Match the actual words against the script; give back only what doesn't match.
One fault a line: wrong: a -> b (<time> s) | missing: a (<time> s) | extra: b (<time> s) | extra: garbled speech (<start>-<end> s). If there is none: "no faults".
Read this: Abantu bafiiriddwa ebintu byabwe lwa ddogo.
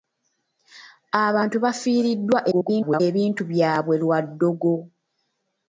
extra: garbled speech (2.5-3.0 s)